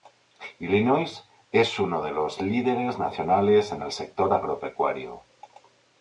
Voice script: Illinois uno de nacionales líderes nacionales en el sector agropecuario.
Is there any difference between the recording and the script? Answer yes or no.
yes